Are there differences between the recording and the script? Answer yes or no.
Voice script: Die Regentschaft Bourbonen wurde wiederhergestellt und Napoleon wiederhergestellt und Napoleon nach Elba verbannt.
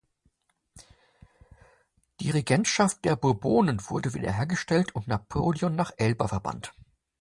yes